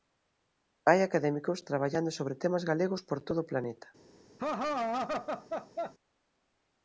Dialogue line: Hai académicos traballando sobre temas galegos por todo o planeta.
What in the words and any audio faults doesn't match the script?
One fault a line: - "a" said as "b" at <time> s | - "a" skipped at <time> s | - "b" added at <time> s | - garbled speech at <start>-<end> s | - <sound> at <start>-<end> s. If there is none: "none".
- laugh at 4.4-5.9 s